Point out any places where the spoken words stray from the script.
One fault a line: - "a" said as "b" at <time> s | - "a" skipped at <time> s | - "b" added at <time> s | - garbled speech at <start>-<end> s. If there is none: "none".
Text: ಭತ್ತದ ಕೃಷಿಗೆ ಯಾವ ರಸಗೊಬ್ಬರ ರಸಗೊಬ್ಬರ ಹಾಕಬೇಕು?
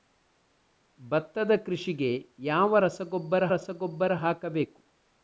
none